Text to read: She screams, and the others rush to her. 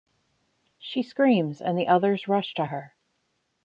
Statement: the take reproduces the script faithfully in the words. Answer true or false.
true